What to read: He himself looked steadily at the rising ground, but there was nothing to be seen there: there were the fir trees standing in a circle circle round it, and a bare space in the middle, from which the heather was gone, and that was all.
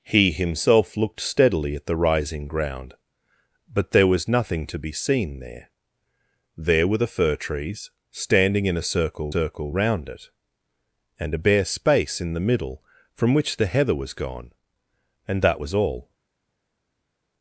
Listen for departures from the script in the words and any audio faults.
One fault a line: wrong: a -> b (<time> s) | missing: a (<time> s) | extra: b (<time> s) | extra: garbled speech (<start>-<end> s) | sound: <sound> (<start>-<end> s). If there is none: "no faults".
no faults